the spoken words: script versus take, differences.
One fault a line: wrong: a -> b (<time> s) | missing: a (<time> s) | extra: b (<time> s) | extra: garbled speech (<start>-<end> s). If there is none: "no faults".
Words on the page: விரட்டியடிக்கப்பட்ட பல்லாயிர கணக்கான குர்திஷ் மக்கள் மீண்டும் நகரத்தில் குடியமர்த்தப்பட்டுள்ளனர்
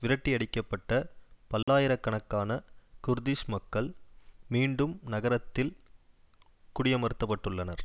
no faults